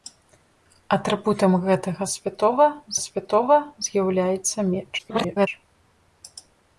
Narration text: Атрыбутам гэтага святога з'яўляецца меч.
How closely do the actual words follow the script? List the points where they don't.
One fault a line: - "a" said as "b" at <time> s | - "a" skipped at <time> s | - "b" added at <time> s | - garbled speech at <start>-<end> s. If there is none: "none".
- "святога" added at 3.1 s
- garbled speech at 5.0-5.5 s